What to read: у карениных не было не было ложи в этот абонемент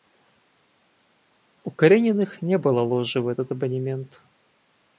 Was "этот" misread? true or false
false